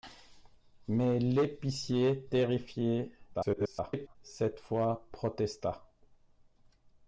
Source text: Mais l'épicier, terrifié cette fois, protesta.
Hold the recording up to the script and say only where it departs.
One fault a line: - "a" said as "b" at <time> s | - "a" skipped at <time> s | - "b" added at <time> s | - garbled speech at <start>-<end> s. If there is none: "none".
- garbled speech at 3.3-4.2 s